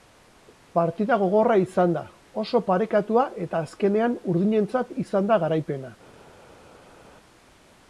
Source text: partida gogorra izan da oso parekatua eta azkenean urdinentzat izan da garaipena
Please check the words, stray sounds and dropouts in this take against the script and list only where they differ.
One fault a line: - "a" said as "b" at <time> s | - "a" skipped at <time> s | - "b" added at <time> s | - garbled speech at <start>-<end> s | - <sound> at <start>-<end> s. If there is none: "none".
none